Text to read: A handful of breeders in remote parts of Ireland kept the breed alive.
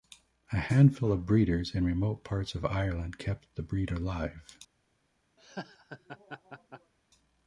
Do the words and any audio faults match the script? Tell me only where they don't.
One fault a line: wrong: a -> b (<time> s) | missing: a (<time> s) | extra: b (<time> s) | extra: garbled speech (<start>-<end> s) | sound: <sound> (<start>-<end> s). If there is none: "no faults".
sound: laugh (5.4-6.9 s)